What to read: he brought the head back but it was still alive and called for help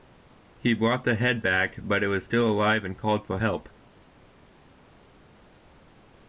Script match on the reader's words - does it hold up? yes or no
yes